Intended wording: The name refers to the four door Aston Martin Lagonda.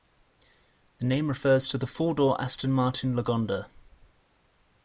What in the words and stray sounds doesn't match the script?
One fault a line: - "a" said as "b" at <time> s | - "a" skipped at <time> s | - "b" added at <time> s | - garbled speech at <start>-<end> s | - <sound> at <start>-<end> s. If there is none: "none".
none